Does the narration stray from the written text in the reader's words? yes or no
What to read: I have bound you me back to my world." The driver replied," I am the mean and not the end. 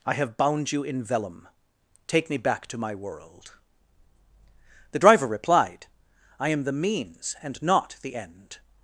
yes